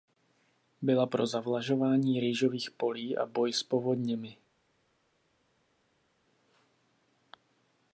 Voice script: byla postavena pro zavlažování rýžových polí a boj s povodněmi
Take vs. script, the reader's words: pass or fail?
fail